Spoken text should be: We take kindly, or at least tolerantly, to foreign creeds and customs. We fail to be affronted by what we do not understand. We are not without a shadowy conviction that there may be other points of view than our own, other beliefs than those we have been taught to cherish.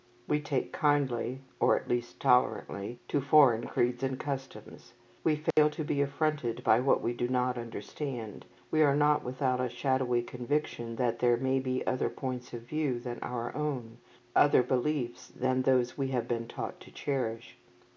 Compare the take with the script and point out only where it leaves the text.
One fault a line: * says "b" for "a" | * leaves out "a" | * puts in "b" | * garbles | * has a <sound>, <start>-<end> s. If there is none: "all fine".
* has a dropout, 5.5-5.6 s